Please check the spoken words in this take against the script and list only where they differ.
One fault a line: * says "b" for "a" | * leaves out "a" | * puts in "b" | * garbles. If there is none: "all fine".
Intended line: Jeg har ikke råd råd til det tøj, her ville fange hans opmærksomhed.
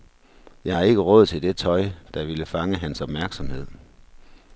* leaves out "råd"
* says "der" for "her"